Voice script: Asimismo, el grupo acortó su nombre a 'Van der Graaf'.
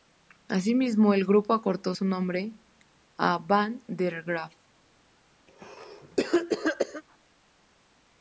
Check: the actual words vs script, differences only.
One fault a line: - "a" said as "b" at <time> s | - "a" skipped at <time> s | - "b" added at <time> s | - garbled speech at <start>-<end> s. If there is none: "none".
none